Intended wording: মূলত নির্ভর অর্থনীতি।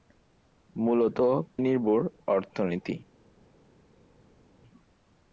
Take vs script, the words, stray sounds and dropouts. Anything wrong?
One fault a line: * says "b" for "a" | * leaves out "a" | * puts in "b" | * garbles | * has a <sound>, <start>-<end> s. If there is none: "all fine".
all fine